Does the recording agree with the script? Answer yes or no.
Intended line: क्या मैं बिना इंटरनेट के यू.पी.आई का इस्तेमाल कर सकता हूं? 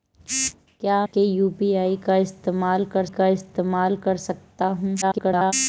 no